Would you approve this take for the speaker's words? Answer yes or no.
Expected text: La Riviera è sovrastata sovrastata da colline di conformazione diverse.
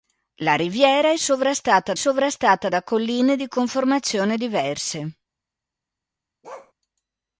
yes